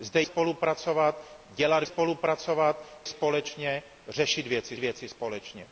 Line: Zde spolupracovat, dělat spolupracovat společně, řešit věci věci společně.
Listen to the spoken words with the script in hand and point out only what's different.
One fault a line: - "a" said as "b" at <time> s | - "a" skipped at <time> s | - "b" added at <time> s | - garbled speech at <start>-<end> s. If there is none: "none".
none